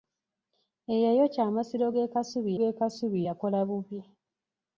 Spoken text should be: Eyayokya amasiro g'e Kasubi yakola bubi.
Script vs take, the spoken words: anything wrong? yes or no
yes